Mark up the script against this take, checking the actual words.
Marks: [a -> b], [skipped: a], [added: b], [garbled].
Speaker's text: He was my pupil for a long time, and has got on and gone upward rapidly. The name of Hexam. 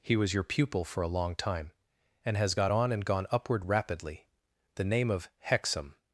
He was [my -> your] pupil for a long time, and has got on and gone upward rapidly. The name of Hexam.